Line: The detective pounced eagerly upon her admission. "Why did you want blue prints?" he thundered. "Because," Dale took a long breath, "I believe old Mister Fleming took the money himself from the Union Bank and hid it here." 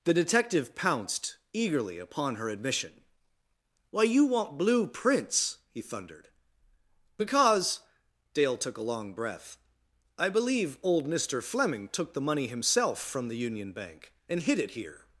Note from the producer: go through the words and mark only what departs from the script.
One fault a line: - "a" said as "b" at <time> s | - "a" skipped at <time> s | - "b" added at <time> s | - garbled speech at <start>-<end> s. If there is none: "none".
- "did" skipped at 4.0 s